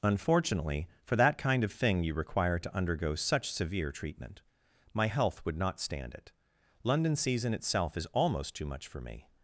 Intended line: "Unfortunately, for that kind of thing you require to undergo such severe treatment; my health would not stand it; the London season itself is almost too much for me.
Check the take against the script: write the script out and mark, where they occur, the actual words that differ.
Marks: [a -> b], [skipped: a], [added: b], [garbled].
"Unfortunately, for that kind of thing you require to undergo such severe treatment; my health would not stand it; [skipped: the] London season itself is almost too much for me.